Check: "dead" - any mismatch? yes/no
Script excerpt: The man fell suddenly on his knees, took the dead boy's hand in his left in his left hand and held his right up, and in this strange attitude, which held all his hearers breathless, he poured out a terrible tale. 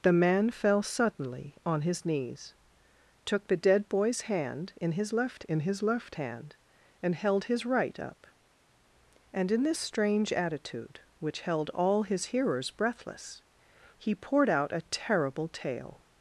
no